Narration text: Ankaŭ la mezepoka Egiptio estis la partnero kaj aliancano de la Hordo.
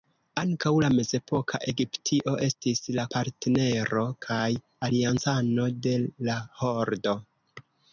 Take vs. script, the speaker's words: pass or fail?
pass